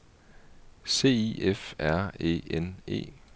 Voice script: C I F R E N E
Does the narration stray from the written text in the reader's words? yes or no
no